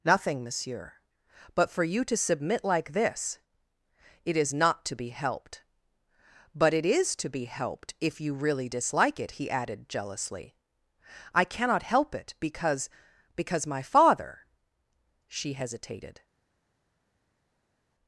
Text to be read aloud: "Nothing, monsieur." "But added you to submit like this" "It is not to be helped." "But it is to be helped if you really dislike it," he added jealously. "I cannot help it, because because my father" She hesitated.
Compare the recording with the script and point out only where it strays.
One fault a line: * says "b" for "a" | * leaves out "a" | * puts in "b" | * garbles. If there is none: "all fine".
* says "for" for "added"